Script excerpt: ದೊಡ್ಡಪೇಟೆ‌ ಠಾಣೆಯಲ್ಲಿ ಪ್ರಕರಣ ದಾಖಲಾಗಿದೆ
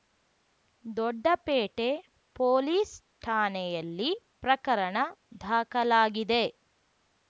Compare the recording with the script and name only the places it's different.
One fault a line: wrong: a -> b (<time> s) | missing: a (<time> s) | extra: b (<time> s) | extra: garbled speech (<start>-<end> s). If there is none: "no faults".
extra: ಪೊಲೀಸ್ (2.4 s)